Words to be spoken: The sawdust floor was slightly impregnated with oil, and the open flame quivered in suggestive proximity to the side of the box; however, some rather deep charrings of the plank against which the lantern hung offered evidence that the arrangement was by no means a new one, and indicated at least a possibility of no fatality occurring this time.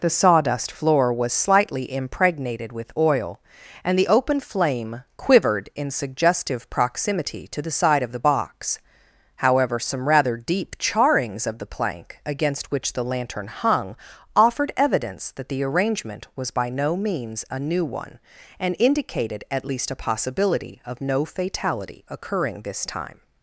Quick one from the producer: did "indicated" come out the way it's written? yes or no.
yes